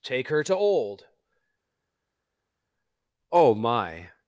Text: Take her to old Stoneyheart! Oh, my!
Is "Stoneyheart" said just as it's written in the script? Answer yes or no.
no